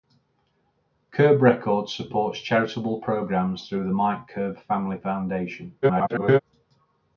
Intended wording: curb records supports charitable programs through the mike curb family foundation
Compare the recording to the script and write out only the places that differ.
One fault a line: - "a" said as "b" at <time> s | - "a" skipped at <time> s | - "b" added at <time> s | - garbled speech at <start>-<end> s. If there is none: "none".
- garbled speech at 5.8-6.4 s